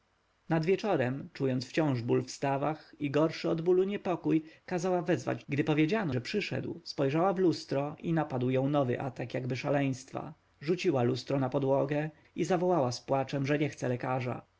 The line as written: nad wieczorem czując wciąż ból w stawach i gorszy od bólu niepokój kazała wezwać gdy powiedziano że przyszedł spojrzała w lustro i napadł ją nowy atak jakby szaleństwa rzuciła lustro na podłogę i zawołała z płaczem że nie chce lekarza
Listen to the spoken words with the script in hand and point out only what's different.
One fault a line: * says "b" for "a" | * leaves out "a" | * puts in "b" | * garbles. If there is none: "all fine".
all fine